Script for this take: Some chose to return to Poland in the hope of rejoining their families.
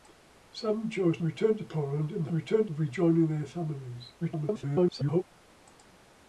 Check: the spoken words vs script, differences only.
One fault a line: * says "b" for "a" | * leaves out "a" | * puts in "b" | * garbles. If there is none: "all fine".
* leaves out "to"
* says "return" for "hope"
* garbles